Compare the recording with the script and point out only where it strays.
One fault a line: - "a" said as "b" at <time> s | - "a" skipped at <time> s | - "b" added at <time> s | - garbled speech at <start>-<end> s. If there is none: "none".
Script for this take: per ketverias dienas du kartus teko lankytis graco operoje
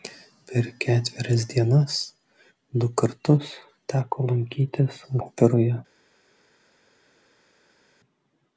- "graco" skipped at 5.0 s